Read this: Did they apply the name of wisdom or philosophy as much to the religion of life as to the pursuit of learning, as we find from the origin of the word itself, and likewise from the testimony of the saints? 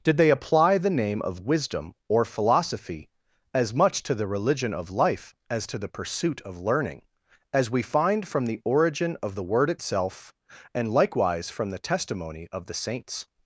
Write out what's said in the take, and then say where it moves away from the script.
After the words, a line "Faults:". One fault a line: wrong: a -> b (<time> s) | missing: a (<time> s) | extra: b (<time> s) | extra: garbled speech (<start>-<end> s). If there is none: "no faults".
Did they apply the name of wisdom or philosophy as much to the religion of life as to the pursuit of learning, as we find from the origin of the word itself, and likewise from the testimony of the saints?
Faults:
no faults